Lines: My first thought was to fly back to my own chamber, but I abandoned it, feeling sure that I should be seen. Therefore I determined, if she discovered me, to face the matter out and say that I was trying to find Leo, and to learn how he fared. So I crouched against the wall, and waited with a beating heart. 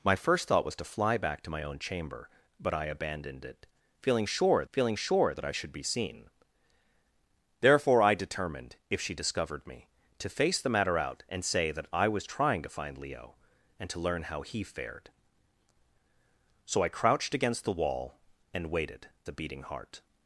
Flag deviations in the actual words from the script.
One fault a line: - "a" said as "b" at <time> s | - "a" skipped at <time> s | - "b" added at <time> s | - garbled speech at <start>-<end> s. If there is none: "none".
- "feeling sure" added at 4.7 s
- "with" skipped at 19.1 s